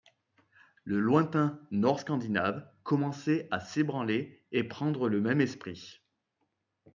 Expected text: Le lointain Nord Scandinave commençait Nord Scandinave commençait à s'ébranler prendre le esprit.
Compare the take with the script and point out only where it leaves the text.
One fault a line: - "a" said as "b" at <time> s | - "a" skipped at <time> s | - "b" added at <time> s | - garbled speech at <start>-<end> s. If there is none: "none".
- "Nord Scandinave commençait" skipped at 3.5 s
- "et" added at 4.5 s
- "même" added at 5.2 s